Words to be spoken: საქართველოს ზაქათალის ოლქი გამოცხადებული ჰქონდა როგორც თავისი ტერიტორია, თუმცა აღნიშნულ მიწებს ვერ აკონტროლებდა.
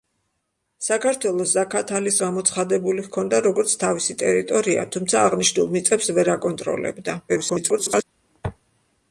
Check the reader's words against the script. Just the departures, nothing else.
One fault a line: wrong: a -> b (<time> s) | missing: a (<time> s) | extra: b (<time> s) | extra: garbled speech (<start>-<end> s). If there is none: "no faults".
missing: ოლქი (2.2 s)
extra: garbled speech (7.3-8.0 s)